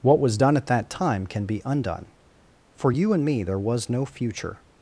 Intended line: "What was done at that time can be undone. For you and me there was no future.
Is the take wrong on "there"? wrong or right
right